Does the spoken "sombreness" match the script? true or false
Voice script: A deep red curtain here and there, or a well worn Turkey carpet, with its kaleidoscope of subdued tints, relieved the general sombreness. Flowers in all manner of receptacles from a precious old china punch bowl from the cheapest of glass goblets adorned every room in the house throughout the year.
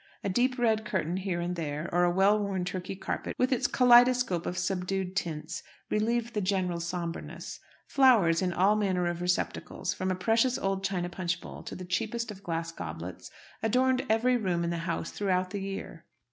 true